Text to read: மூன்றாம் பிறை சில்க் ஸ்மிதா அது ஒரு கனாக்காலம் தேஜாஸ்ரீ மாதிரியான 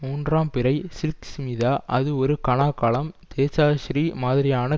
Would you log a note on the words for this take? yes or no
no